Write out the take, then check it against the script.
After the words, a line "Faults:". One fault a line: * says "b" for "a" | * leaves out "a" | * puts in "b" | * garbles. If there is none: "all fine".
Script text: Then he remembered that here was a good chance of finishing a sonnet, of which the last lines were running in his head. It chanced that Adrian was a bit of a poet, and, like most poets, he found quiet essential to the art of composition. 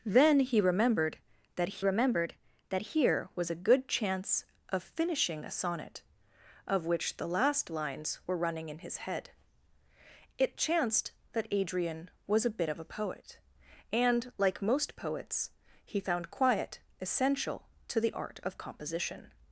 Then he remembered that remembered that here was a good chance of finishing a sonnet, of which the last lines were running in his head. It chanced that Adrian was a bit of a poet, and, like most poets, he found quiet essential to the art of composition.
Faults:
* puts in "remembered that"